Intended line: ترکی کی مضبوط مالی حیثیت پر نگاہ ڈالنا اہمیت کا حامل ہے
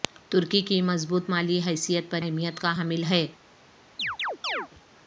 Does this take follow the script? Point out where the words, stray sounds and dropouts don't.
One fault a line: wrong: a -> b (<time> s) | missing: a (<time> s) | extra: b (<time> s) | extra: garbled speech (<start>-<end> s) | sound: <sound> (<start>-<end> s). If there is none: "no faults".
missing: نگاہ ڈالنا (2.2 s)
sound: chirp (4.0-4.7 s)